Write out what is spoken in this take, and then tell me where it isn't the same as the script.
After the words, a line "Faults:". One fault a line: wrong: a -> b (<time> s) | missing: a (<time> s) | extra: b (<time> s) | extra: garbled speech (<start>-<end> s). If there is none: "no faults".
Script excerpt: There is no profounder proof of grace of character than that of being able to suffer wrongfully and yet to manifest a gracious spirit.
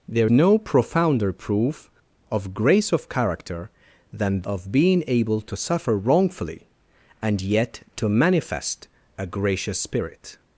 There no profounder proof of grace of character than of being able to suffer wrongfully and yet to manifest a gracious spirit.
Faults:
missing: is (0.3 s)
missing: that (4.4 s)